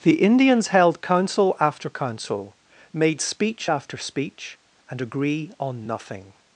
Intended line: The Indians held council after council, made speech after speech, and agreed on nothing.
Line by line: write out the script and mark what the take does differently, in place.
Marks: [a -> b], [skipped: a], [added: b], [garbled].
The Indians held council after council, made speech after speech, and [agreed -> agree] on nothing.